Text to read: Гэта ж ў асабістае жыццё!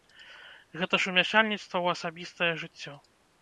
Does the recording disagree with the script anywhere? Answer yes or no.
yes